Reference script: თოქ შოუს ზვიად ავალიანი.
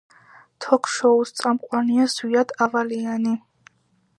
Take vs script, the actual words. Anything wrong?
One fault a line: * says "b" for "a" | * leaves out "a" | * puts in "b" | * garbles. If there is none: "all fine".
* puts in "წამყვანია"